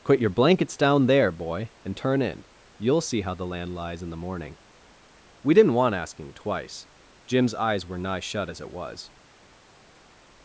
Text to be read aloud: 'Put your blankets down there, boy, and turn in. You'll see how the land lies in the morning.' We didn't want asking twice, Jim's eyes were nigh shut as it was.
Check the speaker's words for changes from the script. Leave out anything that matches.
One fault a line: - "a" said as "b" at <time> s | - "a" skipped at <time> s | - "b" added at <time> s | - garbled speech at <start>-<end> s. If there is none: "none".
none